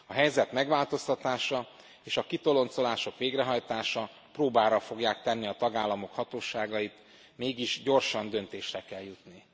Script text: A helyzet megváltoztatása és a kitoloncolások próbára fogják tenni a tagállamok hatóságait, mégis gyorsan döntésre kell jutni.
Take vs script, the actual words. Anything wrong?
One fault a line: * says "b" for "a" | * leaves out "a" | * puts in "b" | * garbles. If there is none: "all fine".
* puts in "végrehajtása"